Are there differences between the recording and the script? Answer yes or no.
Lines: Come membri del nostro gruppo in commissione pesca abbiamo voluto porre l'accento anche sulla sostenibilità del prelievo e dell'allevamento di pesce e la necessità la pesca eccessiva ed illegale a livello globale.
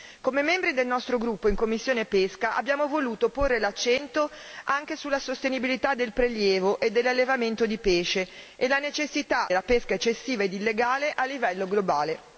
no